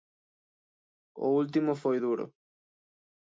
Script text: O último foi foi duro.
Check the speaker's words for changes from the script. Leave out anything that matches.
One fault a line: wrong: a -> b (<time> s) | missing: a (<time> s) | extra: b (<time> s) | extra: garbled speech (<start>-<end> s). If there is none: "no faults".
missing: foi (2.0 s)